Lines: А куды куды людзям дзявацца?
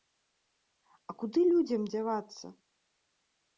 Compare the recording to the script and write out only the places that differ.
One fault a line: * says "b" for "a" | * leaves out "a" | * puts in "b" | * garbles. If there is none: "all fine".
* leaves out "куды"